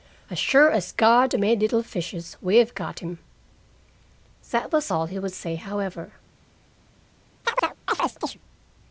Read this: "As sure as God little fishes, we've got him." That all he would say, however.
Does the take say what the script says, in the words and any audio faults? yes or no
no